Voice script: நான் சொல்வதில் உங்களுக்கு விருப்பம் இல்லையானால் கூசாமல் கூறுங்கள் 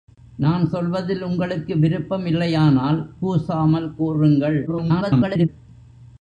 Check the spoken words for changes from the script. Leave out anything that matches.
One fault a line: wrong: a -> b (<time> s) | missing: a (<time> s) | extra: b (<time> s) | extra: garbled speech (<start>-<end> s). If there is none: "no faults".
extra: garbled speech (4.7-5.5 s)